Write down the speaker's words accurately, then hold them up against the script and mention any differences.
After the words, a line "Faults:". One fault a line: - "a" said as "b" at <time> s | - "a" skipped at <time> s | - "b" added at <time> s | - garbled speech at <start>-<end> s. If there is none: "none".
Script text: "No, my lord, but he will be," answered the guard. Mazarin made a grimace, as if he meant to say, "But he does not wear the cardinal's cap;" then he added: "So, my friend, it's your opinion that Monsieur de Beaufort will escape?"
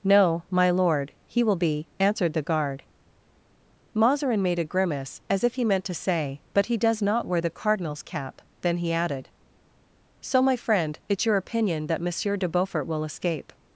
"No, my lord, he will be," answered the guard. Mazarin made a grimace, as if he meant to say, "But he does not wear the cardinal's cap;" then he added: "So, my friend, it's your opinion that Monsieur de Beaufort will escape?"
Faults:
- "but" skipped at 1.1 s